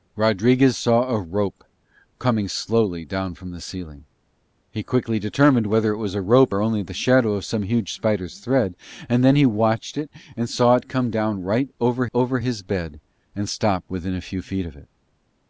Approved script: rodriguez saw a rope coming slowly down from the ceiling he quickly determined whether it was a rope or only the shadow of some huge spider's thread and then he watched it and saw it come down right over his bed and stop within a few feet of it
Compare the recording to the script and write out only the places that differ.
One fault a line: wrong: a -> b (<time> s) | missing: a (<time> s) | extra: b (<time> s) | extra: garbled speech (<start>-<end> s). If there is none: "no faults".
extra: over (12.1 s)